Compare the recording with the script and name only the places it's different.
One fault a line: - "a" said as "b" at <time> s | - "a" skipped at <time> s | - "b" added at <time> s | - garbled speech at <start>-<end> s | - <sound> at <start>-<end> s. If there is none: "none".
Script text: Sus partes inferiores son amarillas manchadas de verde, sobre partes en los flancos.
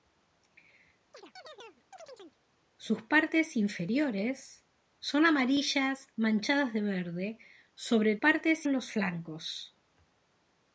- chirp at 1.1-2.4 s